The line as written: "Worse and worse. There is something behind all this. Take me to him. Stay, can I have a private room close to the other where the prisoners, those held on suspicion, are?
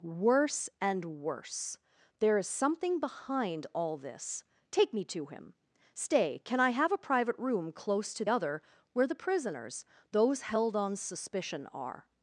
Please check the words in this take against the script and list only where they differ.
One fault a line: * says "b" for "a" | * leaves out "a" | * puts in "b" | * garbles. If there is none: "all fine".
* leaves out "the"